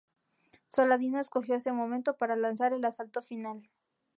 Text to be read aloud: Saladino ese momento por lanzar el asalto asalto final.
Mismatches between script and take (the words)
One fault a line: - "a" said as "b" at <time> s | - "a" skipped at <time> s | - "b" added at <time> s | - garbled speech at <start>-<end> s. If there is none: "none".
- "escogió" added at 1.2 s
- "por" said as "para" at 2.2 s
- "asalto" skipped at 3.2 s